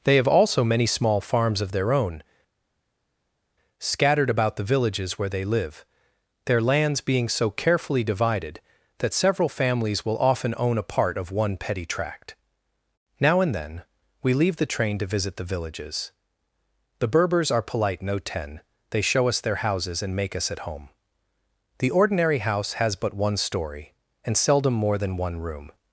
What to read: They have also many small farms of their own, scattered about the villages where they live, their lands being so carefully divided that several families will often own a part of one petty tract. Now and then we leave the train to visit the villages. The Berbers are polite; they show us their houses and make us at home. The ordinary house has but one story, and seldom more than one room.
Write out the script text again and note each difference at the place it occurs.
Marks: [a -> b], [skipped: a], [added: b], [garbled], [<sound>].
They have also many small farms of their own, scattered about the villages where they live, their lands being so carefully divided that several families will often own a part of one petty tract. Now and then we leave the train to visit the villages. The Berbers are polite; [added: no ten] they show us their houses and make us at home. The ordinary house has but one story, and seldom more than one room.